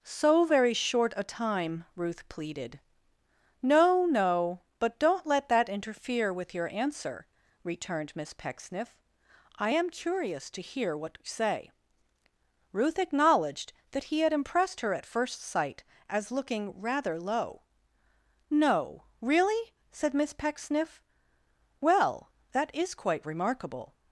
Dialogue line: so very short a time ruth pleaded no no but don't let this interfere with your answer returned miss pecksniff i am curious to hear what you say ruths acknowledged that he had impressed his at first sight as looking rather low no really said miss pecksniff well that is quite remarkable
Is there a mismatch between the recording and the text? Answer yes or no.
yes